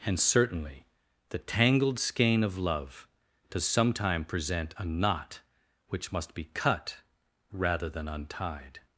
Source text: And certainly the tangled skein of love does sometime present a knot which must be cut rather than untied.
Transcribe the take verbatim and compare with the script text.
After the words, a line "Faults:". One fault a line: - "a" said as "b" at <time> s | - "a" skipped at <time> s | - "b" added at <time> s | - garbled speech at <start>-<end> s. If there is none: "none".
And certainly the tangled skein of love does sometime present a knot which must be cut rather than untied.
Faults:
none